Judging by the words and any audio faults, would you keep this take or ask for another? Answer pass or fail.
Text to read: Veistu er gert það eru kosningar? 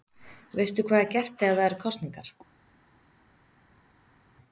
fail